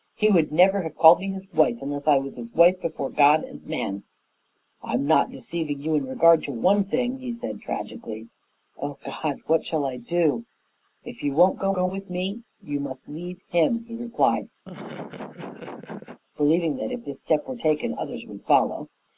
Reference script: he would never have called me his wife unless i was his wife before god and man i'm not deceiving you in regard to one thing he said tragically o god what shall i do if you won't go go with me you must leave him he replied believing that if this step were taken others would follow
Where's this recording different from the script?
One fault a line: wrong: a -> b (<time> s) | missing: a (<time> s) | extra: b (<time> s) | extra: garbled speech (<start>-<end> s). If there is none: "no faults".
no faults